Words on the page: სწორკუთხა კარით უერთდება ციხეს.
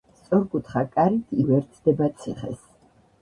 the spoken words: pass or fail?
pass